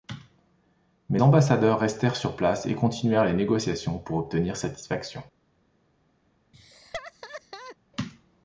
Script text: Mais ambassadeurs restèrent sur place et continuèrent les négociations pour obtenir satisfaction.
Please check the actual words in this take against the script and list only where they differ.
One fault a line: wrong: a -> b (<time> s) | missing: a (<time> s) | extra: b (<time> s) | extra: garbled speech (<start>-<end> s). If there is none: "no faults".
no faults